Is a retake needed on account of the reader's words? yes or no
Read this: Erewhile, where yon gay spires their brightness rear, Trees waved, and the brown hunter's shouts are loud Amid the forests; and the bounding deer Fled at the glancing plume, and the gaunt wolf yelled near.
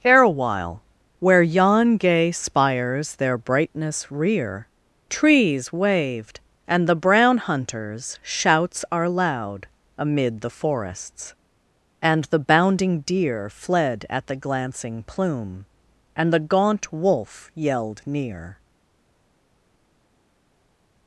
no